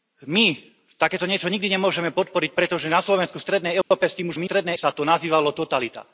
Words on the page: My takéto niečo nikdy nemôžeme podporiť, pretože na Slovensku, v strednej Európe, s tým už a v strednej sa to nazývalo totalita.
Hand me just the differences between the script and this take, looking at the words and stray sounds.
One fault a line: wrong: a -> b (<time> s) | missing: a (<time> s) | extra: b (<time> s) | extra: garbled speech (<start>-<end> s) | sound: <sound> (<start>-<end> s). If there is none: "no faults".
sound: dropout (3.8-3.9 s)